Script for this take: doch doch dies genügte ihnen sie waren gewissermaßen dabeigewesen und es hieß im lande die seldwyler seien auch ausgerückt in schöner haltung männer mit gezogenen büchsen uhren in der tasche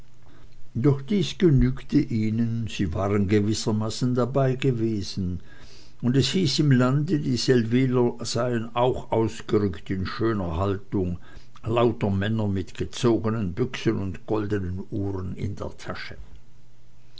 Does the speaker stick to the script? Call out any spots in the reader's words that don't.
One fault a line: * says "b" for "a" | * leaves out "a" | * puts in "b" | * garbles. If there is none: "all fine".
* leaves out "doch"
* puts in "lauter"
* puts in "und goldenen"